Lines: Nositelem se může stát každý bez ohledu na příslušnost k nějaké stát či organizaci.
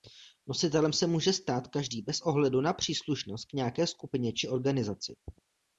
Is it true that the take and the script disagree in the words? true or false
true